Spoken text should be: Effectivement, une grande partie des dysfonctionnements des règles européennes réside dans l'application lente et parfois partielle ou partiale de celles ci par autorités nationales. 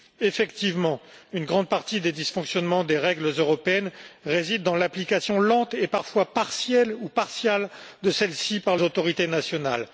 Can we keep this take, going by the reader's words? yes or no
yes